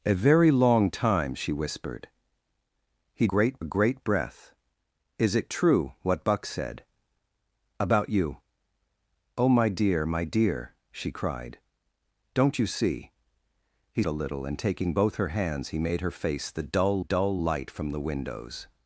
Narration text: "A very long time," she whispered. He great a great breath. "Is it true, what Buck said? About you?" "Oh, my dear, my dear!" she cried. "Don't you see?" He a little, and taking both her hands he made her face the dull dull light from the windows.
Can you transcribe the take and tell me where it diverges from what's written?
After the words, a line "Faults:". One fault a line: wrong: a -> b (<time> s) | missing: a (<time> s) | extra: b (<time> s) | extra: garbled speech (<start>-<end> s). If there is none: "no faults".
"A very long time," she whispered. He great a great breath. "Is it true, what Buck said? About you?" "Oh, my dear, my dear!" she cried. "Don't you see?" He a little, and taking both her hands he made her face the dull dull light from the windows.
Faults:
no faults